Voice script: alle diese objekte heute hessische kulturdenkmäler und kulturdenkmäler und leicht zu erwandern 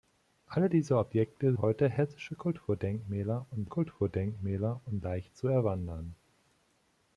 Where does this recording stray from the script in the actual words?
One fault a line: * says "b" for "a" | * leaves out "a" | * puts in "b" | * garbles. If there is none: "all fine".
all fine